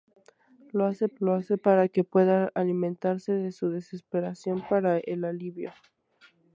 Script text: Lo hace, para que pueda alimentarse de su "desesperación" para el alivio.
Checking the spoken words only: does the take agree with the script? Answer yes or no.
no